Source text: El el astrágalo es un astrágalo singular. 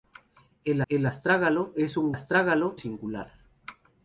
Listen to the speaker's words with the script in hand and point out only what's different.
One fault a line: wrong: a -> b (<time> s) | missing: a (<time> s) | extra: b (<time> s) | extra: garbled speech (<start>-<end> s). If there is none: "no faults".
no faults